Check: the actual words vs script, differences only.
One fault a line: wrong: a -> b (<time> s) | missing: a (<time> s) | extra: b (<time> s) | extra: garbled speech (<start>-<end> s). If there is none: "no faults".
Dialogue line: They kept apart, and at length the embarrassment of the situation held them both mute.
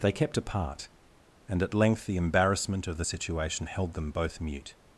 no faults